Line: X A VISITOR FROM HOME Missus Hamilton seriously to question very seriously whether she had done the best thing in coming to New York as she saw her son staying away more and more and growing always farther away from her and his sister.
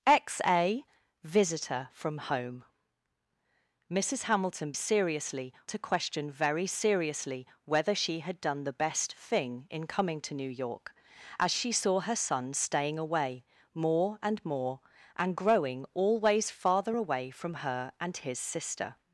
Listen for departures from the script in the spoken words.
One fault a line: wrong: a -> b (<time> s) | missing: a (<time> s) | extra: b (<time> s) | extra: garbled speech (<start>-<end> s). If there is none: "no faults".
no faults